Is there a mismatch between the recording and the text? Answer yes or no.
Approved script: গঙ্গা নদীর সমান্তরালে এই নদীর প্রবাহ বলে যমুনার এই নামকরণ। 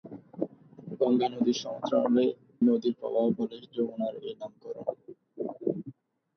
yes